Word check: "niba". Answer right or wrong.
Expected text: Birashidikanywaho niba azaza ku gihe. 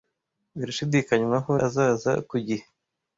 wrong